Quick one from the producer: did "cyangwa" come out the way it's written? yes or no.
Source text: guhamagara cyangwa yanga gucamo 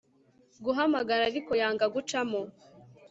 no